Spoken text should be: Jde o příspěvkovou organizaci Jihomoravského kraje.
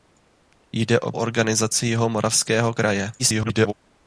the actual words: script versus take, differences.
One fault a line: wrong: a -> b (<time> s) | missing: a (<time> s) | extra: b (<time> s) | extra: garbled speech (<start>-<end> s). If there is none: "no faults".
missing: příspěvkovou (1.1 s)
extra: garbled speech (3.2-3.7 s)